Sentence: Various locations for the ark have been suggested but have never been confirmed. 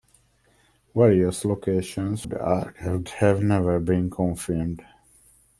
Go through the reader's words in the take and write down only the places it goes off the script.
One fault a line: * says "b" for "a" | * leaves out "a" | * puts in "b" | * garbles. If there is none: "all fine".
* leaves out "for"
* leaves out "been suggested but"